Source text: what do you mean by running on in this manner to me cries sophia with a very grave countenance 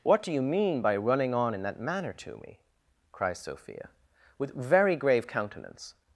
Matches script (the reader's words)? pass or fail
fail